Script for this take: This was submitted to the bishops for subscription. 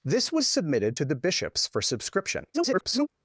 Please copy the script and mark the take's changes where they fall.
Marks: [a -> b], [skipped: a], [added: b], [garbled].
This was submitted to the bishops for subscription. [garbled]